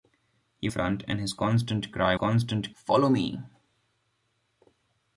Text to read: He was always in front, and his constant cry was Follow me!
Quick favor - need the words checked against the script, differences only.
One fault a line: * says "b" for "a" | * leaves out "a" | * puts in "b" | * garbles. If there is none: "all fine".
* leaves out "was always in"
* says "constant" for "was"